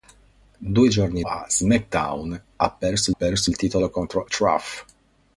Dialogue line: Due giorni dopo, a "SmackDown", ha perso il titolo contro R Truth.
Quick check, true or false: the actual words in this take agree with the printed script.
false